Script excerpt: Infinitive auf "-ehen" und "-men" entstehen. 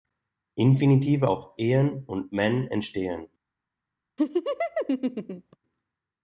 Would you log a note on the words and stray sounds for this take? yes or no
yes